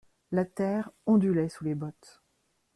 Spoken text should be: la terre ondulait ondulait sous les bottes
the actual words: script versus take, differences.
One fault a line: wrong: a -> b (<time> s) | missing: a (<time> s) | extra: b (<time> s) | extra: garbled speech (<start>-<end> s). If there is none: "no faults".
missing: ondulait (1.5 s)